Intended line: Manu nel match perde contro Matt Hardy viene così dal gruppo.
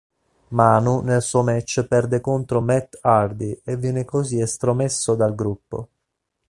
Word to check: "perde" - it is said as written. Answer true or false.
true